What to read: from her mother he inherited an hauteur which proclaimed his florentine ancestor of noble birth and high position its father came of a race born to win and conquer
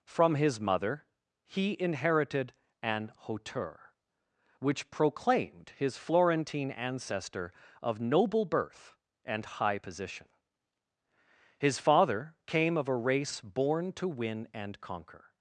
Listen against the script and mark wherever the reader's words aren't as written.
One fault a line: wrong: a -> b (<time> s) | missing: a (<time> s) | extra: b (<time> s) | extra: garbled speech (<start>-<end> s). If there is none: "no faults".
wrong: her -> his (0.3 s)
wrong: its -> his (11.6 s)